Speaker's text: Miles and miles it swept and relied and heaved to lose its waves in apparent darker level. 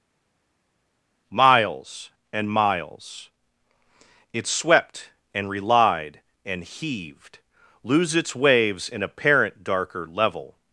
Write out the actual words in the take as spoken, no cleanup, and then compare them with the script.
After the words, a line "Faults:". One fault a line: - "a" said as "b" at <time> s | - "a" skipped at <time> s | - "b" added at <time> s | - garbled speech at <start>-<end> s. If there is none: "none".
Miles and miles it swept and relied and heaved lose its waves in apparent darker level.
Faults:
- "to" skipped at 7.4 s